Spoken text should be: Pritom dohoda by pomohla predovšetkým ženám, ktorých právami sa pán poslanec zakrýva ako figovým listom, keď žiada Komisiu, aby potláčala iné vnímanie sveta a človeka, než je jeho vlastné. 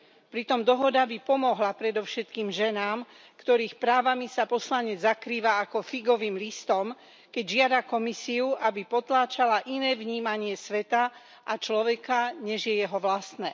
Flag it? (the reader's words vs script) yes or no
yes